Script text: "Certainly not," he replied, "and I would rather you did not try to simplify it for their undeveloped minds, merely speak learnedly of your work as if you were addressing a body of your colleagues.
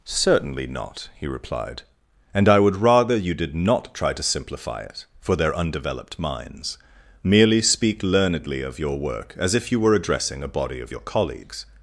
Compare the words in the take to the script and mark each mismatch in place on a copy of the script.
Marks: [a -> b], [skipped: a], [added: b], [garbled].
"Certainly not," he replied, "and I would rather you did not try to simplify it for their undeveloped minds, merely speak learnedly of your work as if you were addressing a body of your colleagues.